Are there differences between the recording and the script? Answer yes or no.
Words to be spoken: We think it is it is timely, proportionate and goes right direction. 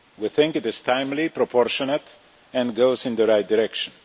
yes